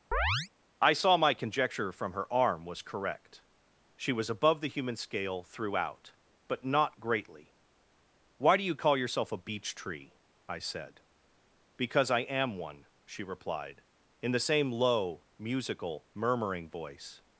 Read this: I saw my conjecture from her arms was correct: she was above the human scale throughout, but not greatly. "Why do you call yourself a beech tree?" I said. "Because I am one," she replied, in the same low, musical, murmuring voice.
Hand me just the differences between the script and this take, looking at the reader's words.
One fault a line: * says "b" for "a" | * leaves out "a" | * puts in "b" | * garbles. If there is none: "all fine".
* says "arm" for "arms"